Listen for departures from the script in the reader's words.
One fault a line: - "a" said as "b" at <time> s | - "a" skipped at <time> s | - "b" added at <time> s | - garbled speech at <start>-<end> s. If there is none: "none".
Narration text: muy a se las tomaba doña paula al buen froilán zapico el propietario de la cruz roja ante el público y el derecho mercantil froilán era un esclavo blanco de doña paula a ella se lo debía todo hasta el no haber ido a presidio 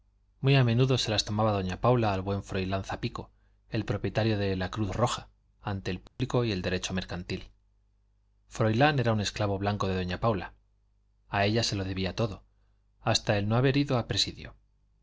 - "menudo" added at 0.6 s